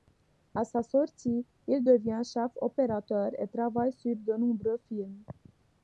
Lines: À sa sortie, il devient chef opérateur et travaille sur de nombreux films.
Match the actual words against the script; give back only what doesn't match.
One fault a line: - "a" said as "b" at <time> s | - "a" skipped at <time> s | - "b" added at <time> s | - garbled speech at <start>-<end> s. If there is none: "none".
none